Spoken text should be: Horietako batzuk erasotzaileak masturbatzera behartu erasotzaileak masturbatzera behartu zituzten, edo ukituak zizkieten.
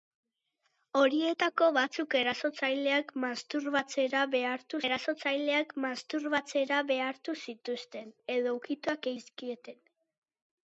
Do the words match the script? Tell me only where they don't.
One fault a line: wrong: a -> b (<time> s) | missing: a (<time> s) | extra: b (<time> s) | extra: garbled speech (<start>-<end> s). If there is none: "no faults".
no faults